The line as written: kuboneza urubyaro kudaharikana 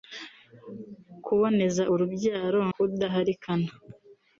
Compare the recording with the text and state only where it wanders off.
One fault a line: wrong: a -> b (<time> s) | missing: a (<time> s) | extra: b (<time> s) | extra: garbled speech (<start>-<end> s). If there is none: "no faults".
no faults